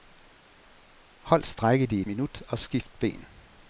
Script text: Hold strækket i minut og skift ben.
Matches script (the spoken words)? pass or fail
pass